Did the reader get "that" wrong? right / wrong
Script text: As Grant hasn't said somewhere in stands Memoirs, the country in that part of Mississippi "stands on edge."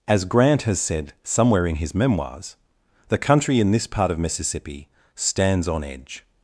wrong